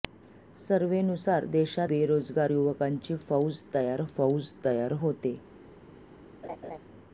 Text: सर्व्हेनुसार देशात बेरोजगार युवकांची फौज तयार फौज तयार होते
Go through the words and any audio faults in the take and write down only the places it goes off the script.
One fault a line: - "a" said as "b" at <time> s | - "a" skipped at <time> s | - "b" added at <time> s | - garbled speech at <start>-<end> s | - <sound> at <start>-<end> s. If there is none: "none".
- laugh at 6.4-6.8 s